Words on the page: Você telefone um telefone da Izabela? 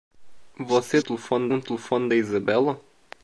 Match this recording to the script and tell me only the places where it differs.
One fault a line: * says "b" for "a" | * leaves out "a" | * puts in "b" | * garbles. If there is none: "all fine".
all fine